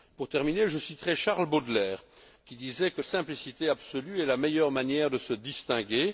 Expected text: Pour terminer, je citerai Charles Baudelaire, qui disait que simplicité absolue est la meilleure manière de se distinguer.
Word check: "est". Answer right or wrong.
right